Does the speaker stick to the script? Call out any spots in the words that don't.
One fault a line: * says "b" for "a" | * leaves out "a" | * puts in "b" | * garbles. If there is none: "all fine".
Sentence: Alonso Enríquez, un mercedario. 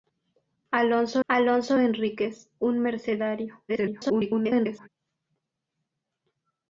* puts in "alonso"
* garbles